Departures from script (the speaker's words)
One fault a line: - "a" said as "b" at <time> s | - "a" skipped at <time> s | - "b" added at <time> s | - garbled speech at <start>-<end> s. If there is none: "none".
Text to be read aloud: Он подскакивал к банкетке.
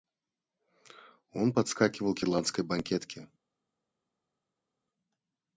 - "ирландской" added at 2.2 s